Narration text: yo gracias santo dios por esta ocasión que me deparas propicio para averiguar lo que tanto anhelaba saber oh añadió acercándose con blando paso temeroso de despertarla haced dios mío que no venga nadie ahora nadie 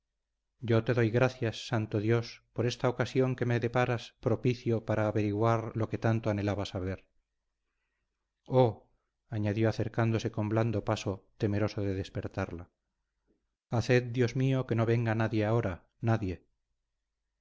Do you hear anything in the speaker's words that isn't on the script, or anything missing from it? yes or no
yes